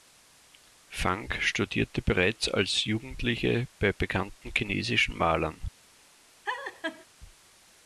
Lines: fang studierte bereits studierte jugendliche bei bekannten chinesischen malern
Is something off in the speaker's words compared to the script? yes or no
yes